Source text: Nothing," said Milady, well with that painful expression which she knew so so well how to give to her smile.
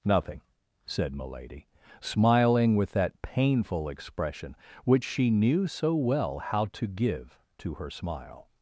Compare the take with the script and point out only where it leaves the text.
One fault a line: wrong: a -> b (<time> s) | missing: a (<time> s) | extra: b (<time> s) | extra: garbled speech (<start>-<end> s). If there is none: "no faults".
wrong: well -> smiling (2.0 s)
missing: so (5.9 s)